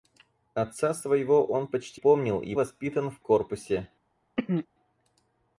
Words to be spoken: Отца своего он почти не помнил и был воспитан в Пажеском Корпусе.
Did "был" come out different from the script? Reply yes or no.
yes